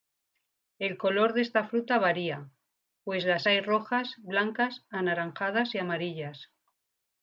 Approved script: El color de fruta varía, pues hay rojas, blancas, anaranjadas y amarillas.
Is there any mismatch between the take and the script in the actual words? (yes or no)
yes